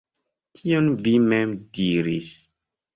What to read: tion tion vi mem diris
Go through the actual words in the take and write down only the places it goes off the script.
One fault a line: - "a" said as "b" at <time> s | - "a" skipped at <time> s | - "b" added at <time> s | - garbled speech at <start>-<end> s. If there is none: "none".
- "tion" skipped at 0.9 s